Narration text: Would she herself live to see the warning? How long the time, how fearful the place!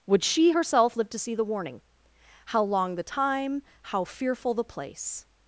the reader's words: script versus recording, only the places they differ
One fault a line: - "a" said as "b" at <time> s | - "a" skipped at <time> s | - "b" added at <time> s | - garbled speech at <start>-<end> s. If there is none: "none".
none